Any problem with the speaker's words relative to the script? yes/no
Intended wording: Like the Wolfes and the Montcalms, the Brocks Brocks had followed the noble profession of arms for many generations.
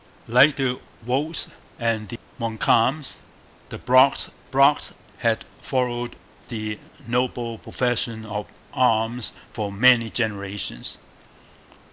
no